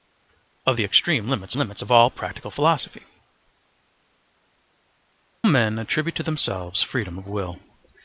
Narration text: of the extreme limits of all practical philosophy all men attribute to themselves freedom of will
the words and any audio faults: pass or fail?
fail